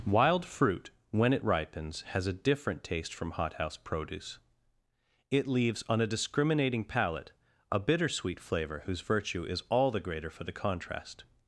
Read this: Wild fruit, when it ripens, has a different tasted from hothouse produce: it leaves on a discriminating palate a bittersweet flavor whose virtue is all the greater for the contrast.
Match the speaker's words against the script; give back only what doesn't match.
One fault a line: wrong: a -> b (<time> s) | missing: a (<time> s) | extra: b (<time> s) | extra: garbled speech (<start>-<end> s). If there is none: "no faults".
wrong: tasted -> taste (2.8 s)